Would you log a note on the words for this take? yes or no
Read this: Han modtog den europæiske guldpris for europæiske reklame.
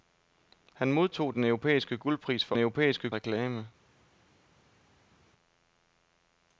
no